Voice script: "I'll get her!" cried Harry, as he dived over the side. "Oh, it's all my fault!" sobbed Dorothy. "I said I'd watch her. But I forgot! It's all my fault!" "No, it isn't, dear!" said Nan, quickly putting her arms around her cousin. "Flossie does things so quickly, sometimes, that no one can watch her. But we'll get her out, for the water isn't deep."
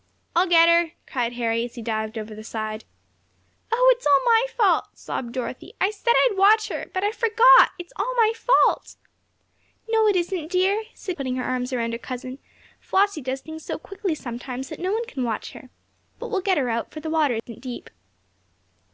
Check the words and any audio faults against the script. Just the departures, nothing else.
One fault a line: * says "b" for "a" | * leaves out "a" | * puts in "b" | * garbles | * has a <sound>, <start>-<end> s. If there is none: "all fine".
* leaves out "Nan quickly"
* has a dropout, 17.4-17.5 s